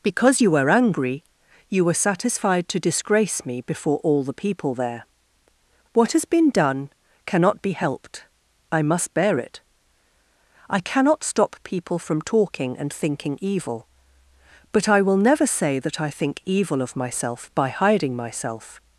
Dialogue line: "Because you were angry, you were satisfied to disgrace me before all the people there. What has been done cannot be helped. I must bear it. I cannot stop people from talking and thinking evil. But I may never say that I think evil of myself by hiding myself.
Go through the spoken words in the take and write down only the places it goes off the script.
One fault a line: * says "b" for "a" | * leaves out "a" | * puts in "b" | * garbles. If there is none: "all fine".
* says "will" for "may"